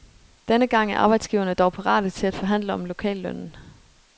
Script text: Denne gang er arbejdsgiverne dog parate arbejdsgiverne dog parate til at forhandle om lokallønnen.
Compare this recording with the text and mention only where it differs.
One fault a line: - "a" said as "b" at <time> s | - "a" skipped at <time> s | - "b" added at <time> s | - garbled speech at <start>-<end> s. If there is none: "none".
- "arbejdsgiverne dog parate" skipped at 2.1 s